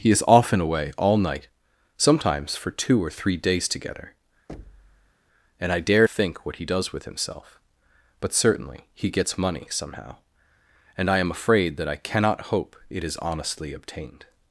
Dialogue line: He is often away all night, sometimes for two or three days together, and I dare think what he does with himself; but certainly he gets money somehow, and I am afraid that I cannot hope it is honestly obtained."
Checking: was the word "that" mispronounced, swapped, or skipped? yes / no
no